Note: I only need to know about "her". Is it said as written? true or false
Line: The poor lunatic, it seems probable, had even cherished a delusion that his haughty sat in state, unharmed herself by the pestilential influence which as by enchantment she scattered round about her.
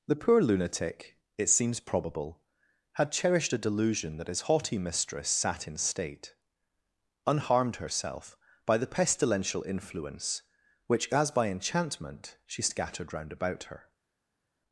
true